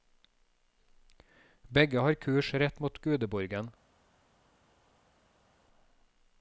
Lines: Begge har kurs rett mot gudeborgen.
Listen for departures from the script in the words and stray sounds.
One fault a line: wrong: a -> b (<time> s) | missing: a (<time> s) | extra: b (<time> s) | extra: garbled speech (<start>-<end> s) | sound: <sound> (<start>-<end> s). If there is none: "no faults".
no faults